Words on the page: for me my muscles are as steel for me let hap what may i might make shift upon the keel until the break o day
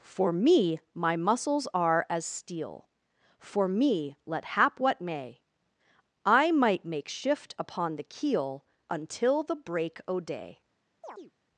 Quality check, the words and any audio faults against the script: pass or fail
fail